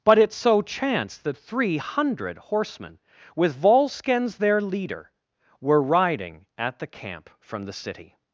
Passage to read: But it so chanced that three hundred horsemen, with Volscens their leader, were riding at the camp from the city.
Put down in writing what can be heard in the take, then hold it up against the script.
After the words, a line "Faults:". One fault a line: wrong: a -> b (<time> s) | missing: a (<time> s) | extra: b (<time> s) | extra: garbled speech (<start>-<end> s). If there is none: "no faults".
But it so chanced that three hundred horsemen, with Volscens their leader, were riding at the camp from the city.
Faults:
no faults